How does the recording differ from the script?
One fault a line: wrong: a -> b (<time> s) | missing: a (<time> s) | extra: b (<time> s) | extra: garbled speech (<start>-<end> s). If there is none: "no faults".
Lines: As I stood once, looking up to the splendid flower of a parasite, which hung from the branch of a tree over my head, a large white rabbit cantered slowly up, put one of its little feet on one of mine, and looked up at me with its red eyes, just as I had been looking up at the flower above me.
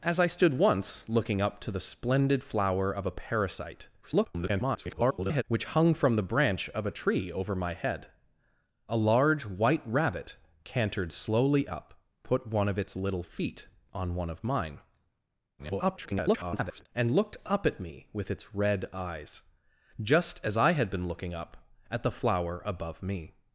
extra: garbled speech (4.0-5.4 s)
extra: garbled speech (15.6-16.9 s)